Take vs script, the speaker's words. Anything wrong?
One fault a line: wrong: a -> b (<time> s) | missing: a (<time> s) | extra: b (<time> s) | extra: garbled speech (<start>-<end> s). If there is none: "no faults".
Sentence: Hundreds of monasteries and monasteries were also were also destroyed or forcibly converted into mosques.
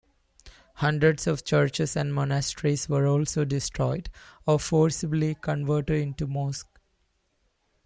wrong: monasteries -> churches (1.4 s)
missing: were also (3.5 s)